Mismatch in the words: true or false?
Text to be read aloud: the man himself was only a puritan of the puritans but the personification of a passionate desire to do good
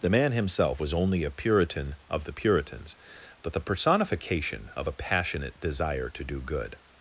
false